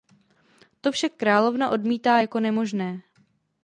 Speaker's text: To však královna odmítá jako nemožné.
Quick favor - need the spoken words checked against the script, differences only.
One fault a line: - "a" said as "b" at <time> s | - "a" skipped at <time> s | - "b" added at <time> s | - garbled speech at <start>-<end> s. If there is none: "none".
none